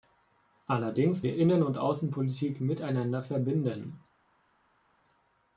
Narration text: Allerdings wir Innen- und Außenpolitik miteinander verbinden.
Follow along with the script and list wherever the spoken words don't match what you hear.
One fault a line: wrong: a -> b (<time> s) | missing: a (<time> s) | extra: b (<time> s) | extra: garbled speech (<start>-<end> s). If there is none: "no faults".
no faults